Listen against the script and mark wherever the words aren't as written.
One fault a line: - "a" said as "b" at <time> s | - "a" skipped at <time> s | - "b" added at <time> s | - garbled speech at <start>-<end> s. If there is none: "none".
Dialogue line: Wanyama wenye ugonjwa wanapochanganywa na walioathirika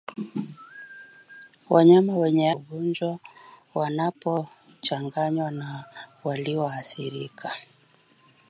none